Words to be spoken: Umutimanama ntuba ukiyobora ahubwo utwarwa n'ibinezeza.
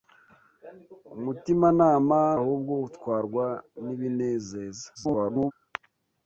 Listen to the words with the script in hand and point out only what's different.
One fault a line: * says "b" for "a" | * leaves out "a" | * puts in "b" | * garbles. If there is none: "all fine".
* leaves out "ntuba ukiyobora"
* garbles